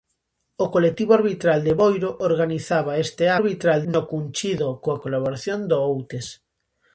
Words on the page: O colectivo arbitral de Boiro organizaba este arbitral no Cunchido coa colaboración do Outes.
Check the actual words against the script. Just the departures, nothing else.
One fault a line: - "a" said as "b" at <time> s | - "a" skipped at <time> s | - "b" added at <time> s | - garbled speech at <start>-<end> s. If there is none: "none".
none